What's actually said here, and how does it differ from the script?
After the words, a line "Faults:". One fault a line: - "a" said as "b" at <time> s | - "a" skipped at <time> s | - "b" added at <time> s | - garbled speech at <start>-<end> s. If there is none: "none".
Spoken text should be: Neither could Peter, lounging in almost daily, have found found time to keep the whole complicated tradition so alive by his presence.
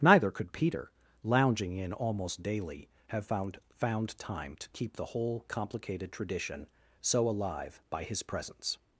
Neither could Peter, lounging in almost daily, have found found time to keep the whole complicated tradition so alive by his presence.
Faults:
none